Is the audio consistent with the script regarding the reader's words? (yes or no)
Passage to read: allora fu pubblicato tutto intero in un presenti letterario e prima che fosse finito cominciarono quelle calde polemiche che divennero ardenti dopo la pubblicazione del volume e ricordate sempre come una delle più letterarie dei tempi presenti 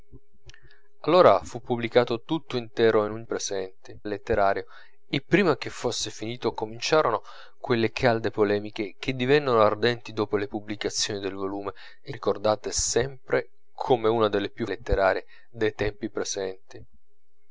yes